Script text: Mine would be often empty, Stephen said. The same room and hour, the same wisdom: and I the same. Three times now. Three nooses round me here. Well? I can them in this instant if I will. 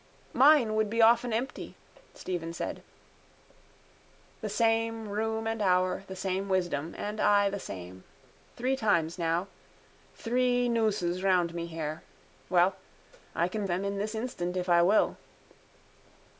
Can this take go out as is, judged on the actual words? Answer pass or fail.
pass